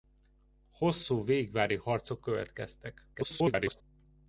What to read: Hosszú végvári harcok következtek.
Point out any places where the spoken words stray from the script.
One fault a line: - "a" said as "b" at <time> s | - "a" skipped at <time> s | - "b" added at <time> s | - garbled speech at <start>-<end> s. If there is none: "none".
- garbled speech at 3.1-3.8 s